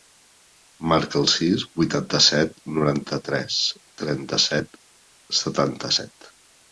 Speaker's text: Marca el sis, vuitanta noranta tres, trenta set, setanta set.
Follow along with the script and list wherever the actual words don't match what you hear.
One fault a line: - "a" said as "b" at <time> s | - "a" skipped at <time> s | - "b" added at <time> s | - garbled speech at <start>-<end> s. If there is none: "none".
- "set" added at 2.3 s